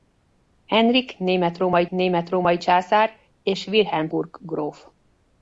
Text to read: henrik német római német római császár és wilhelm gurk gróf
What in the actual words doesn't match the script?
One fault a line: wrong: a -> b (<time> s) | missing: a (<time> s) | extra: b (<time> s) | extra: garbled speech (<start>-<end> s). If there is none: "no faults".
no faults